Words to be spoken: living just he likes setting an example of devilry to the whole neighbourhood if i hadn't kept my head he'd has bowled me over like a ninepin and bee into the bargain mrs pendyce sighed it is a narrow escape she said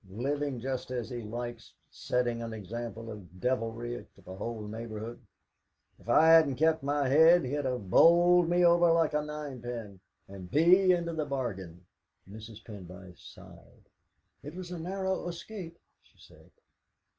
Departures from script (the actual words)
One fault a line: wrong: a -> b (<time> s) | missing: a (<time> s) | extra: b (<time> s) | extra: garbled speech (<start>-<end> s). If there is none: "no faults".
extra: as (0.9 s)
wrong: has -> have (7.7 s)
wrong: is -> was (14.6 s)